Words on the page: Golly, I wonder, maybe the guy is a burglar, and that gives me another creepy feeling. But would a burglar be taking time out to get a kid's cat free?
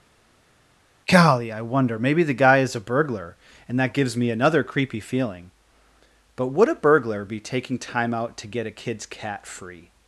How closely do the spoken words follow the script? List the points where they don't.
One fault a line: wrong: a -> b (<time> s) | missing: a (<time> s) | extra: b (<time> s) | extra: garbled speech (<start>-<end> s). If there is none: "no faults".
no faults